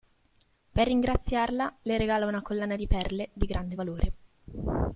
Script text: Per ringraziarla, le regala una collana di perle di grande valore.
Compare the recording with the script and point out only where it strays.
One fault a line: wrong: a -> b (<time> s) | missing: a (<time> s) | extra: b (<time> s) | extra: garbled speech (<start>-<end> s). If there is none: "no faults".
no faults